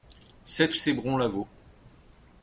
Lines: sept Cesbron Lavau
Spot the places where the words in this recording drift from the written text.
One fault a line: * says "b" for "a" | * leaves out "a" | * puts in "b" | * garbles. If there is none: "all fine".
all fine